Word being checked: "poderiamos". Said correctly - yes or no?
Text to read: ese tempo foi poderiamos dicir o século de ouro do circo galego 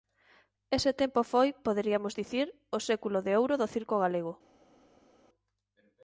yes